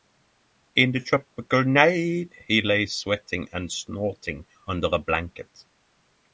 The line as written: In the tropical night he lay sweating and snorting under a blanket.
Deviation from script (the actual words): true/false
false